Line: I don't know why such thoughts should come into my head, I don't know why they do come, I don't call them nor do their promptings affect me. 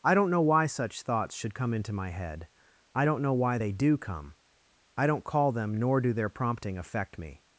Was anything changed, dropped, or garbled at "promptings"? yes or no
yes